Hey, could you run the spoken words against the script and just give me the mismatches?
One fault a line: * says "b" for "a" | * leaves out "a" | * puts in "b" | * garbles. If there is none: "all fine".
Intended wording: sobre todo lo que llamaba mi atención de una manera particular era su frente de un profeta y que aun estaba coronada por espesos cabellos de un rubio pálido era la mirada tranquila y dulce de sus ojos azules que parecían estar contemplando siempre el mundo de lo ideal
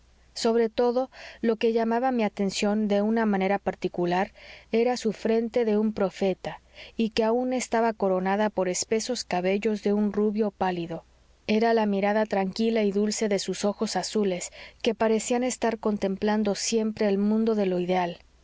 all fine